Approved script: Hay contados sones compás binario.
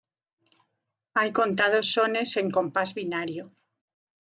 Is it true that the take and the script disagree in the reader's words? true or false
true